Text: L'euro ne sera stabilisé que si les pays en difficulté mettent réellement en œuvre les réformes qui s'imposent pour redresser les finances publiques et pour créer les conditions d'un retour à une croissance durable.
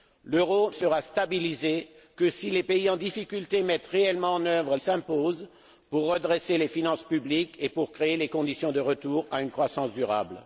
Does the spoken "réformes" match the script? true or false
false